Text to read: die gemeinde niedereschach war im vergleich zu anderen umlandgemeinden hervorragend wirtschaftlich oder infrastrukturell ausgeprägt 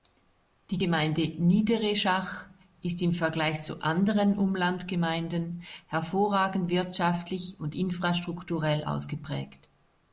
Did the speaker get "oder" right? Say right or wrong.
wrong